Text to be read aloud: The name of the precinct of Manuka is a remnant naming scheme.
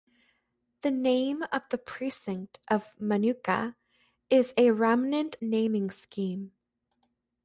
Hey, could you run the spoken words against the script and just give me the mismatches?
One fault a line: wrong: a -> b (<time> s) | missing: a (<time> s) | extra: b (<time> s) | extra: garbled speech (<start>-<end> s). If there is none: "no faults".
no faults